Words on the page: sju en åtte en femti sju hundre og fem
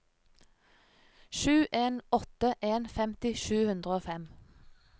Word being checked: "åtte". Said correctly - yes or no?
yes